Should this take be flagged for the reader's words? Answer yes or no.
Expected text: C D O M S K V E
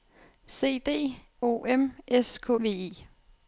no